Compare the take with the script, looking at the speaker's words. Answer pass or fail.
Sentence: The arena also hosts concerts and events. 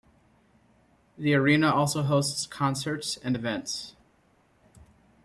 pass